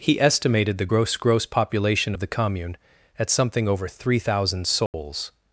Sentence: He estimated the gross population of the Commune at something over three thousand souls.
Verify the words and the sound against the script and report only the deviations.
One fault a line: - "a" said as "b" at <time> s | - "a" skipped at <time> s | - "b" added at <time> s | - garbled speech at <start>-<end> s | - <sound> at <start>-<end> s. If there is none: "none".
- "gross" added at 1.2 s
- dropout at 4.9-4.9 s